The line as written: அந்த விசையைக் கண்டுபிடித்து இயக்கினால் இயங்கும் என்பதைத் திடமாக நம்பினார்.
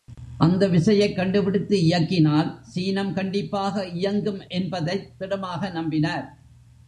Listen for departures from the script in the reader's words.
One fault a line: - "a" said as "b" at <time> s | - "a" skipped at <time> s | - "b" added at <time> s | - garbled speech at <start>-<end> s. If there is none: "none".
- "சீனம் கண்டிப்பாக" added at 2.6 s